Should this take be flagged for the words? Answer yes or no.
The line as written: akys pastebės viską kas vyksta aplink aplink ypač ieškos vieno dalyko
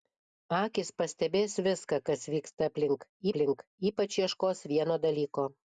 no